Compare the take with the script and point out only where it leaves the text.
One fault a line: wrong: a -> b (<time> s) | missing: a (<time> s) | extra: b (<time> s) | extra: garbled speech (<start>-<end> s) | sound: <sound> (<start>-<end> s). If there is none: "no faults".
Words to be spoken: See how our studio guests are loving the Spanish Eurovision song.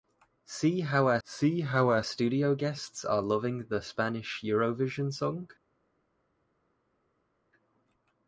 extra: see how our (1.2 s)